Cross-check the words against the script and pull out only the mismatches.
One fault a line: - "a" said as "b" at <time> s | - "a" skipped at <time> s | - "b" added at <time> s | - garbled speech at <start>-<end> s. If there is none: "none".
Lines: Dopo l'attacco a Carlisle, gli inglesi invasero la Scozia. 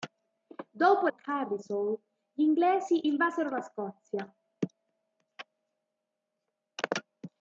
- "l'attacco" skipped at 1.1 s